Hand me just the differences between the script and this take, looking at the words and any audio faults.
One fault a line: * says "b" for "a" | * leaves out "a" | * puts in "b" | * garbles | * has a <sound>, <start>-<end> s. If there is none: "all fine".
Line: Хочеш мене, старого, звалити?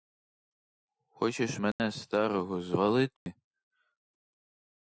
* has a dropout, 1.7-1.8 s
* has a dropout, 3.2-3.3 s